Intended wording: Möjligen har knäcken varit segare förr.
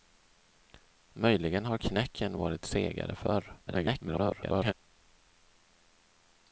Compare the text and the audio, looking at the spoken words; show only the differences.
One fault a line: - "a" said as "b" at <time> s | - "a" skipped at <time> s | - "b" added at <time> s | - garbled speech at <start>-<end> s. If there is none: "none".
- garbled speech at 3.7-4.7 s